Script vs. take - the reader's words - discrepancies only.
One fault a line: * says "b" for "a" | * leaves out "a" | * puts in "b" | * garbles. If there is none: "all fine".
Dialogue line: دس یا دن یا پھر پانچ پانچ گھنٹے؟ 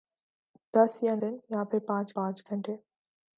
all fine